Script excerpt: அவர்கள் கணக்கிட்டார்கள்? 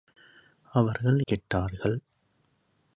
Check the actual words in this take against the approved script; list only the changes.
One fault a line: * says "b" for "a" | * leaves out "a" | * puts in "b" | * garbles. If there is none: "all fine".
all fine